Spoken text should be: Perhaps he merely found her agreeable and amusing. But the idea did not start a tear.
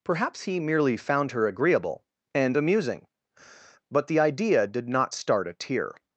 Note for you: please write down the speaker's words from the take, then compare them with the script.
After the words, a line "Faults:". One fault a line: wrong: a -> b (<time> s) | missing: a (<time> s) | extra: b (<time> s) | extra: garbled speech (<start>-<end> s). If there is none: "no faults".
Perhaps he merely found her agreeable and amusing. But the idea did not start a tear.
Faults:
no faults